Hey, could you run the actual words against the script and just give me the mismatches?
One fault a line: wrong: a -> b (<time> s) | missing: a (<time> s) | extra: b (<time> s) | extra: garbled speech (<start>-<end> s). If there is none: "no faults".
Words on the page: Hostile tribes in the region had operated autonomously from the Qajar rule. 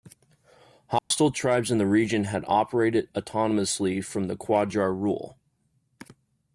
no faults